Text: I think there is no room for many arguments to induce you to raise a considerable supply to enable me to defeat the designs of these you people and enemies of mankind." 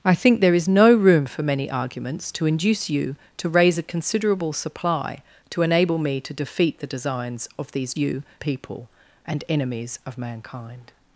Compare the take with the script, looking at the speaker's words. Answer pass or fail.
pass